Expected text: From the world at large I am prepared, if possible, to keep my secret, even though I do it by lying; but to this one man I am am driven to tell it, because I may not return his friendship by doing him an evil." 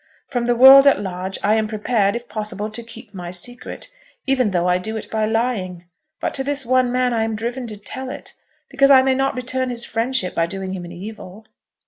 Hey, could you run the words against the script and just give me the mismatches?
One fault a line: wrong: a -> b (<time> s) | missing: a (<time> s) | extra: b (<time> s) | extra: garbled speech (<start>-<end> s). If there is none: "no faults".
missing: am (7.3 s)